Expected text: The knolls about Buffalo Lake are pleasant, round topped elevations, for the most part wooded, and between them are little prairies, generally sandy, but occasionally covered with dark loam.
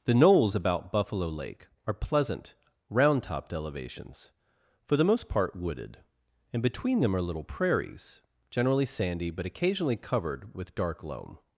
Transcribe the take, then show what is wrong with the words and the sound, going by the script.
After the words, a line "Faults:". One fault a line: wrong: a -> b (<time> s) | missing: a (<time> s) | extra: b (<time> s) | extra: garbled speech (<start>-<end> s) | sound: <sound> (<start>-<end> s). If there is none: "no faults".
The knolls about Buffalo Lake are pleasant, round topped elevations, for the most part wooded, and between them are little prairies, generally sandy, but occasionally covered with dark loam.
Faults:
no faults